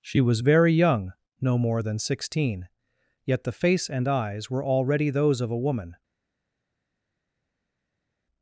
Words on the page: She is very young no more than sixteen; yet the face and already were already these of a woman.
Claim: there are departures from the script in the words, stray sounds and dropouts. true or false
true